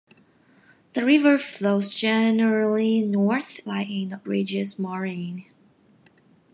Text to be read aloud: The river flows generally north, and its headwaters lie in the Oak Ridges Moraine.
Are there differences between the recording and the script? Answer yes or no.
yes